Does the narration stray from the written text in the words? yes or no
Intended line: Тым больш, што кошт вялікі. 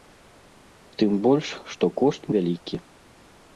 no